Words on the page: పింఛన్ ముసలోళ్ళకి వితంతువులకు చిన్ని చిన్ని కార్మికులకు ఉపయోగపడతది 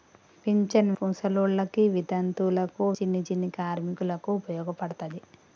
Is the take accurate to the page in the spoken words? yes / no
yes